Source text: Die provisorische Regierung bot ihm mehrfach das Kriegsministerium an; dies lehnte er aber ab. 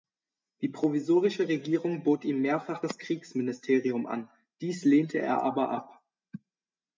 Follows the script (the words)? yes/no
yes